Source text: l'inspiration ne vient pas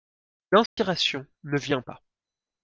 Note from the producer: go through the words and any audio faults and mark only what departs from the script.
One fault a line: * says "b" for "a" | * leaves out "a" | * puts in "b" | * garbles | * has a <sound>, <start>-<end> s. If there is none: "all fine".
* has a dropout, 0.7-0.8 s